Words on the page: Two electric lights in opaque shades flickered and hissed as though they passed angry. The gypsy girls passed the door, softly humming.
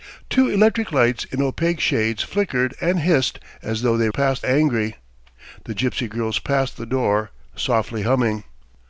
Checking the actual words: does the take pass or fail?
pass